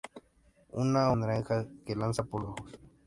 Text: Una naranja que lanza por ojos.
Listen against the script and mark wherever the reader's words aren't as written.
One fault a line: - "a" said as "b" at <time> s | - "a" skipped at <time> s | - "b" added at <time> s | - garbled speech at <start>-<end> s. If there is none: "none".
none